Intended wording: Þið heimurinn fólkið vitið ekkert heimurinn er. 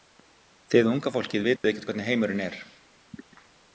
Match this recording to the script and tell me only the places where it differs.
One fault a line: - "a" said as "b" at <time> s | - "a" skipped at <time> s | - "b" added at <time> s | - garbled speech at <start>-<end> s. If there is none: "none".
- "heimurinn" said as "unga" at 0.9 s
- "hvernig" added at 1.9 s